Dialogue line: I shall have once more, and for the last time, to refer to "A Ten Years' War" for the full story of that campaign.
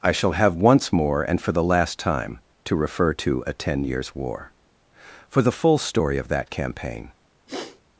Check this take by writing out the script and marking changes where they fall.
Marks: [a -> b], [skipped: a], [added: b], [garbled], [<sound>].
I shall have once more, and for the last time, to refer to "A Ten Years' War" for the full story of that campaign. [sniff]